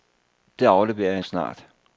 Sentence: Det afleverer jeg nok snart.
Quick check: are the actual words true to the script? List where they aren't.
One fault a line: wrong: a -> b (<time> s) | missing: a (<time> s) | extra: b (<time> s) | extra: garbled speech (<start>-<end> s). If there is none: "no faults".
missing: nok (1.2 s)